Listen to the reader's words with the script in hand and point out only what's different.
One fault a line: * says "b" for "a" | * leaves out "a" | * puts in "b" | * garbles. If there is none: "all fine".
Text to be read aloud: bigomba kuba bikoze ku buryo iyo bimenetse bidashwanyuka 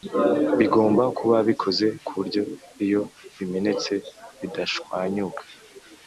all fine